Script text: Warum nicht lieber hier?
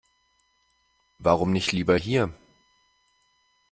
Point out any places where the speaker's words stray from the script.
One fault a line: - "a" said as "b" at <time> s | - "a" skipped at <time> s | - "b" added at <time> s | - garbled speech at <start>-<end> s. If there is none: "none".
none